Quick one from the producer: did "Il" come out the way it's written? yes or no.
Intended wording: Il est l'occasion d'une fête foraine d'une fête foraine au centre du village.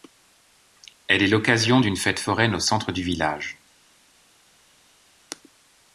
no